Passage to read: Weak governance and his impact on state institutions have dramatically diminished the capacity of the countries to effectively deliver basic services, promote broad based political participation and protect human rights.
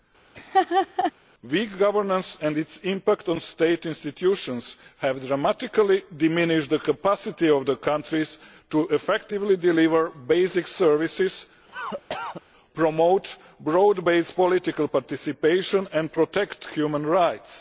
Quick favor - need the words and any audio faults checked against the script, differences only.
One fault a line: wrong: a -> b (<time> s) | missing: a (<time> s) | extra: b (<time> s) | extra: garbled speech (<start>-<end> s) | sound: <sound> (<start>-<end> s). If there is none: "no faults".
sound: laugh (0.3-1.1 s)
wrong: his -> its (2.6 s)
sound: cough (11.7-12.4 s)